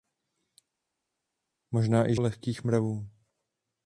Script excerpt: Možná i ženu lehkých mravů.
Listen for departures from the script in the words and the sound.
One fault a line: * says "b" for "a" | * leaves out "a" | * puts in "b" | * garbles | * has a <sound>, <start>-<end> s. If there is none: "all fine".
* leaves out "ženu"